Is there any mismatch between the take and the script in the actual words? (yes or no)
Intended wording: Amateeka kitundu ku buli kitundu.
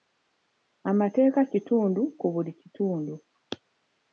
no